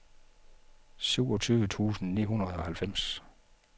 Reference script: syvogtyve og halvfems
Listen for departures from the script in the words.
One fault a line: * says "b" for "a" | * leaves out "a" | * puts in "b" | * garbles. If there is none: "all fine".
* puts in "tusind ni hundrede"